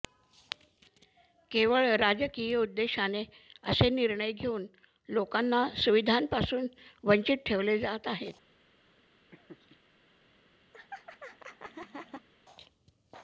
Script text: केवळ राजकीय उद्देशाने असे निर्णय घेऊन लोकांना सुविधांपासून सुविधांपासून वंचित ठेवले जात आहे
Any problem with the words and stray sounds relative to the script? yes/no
yes